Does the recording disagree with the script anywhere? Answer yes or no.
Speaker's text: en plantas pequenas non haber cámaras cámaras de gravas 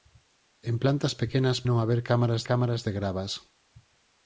no